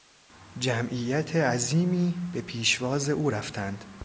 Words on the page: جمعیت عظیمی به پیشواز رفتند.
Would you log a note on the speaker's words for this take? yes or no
yes